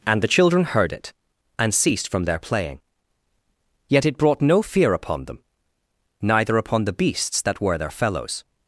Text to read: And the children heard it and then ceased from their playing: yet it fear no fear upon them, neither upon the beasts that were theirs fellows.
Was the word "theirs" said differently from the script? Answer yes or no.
yes